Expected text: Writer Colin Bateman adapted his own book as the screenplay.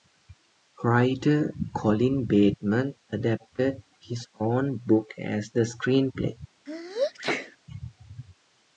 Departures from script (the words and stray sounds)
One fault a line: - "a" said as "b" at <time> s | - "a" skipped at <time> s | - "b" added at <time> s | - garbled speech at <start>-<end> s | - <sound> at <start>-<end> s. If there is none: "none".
- sneeze at 6.7-7.6 s